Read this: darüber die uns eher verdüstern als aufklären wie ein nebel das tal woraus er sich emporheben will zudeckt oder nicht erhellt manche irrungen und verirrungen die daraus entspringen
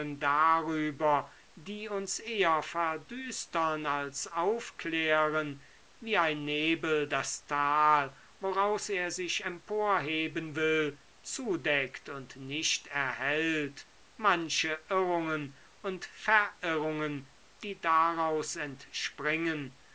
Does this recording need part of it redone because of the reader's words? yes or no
yes